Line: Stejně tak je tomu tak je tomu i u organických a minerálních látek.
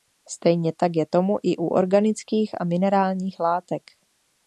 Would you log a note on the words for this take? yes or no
yes